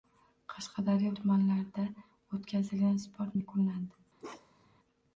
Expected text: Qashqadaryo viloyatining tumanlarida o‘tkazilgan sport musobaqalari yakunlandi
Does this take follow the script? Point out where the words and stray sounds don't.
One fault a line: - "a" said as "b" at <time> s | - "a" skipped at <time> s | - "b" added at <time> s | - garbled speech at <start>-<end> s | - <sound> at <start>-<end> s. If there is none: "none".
- "viloyatining" skipped at 1.1 s
- "musobaqalari" skipped at 3.4 s
- bark at 4.2-4.8 s